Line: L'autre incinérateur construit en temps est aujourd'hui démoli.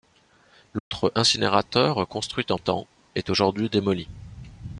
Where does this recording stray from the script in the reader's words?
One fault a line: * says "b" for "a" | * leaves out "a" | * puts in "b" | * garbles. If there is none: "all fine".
all fine